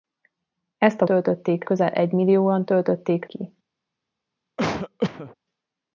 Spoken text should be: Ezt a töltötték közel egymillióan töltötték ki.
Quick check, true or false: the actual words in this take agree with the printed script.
true